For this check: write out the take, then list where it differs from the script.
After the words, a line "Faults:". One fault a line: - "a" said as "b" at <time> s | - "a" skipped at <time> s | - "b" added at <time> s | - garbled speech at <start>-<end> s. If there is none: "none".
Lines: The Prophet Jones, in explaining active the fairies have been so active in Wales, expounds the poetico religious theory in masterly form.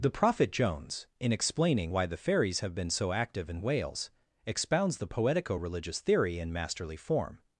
The Prophet Jones, in explaining why the fairies have been so active in Wales, expounds the poetico religious theory in masterly form.
Faults:
- "active" said as "why" at 1.9 s